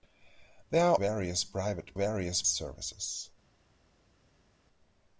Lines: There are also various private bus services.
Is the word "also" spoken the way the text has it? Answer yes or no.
no